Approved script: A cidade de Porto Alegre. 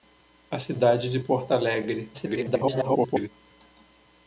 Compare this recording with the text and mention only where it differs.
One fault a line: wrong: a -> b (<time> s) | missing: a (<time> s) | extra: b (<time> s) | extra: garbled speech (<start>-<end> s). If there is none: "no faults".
extra: garbled speech (2.1-3.3 s)